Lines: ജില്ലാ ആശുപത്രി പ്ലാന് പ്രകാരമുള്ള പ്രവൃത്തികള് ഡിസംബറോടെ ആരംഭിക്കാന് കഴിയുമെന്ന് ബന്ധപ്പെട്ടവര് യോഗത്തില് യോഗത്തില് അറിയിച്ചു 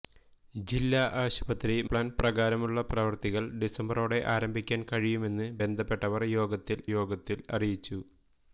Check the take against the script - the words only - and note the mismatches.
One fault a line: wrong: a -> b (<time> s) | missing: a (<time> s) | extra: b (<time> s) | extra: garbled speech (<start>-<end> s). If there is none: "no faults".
no faults